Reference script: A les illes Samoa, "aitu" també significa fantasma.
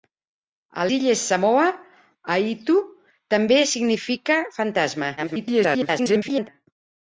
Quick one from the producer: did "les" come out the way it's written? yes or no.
no